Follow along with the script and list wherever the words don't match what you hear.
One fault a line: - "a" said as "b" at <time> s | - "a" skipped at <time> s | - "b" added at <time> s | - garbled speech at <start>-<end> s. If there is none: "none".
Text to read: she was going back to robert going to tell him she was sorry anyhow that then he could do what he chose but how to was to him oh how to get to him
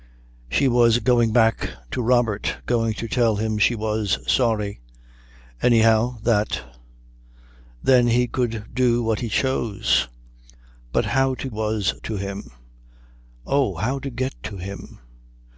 none